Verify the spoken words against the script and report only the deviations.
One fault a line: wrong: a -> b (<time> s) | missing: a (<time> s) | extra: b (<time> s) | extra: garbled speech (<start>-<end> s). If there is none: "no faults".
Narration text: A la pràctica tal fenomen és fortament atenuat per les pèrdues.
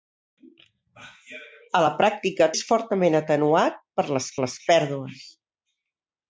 missing: tal fenomen (2.5 s)
extra: les (4.5 s)